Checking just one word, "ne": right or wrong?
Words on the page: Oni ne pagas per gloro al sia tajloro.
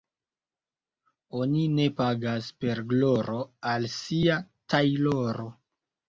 right